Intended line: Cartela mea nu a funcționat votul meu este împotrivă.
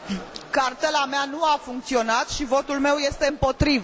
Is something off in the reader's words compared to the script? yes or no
yes